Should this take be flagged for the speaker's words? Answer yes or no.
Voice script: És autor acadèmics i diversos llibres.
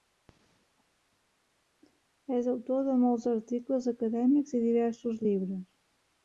yes